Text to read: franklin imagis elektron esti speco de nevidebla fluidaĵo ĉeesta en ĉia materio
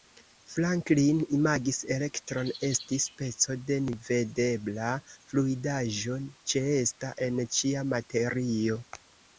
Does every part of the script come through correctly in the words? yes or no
yes